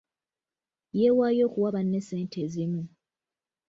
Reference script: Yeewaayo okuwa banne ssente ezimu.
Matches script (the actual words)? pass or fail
pass